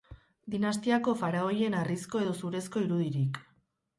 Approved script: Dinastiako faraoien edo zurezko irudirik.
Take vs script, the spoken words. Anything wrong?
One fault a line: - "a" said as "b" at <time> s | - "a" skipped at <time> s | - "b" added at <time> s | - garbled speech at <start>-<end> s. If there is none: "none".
- "harrizko" added at 1.8 s